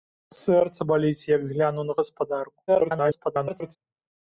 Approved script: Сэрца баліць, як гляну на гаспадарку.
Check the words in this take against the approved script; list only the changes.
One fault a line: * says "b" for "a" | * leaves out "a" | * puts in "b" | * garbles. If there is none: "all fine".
* garbles